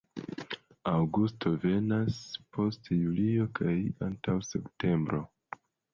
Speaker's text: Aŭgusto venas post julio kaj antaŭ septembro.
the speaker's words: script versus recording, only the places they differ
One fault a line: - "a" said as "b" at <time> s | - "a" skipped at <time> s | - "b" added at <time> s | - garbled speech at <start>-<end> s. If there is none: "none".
none